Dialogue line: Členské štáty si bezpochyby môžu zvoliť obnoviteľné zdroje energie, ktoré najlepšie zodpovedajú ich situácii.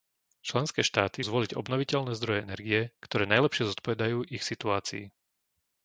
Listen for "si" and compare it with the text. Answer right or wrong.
wrong